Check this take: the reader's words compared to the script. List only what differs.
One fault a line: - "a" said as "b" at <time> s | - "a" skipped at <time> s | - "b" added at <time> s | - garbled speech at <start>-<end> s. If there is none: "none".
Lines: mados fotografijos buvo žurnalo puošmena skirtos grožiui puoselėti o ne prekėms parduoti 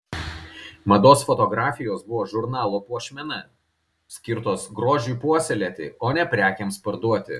none